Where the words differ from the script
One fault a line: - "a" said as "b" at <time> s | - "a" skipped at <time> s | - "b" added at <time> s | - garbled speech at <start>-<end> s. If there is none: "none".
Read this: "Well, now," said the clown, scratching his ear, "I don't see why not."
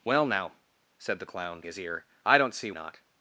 - "scratching" skipped at 1.6 s
- "why" skipped at 2.7 s